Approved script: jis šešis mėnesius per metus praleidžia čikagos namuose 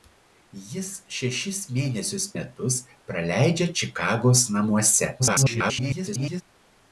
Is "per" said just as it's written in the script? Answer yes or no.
no